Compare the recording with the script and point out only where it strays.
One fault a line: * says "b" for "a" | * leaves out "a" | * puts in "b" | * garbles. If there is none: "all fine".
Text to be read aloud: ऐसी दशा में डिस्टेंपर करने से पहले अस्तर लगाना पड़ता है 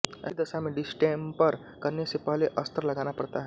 all fine